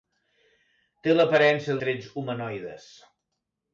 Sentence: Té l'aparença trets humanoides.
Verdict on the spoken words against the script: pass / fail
pass